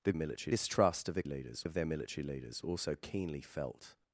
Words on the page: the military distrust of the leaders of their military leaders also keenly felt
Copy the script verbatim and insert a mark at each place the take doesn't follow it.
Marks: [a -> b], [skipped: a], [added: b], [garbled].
the military distrust of the leaders of their military leaders also keenly felt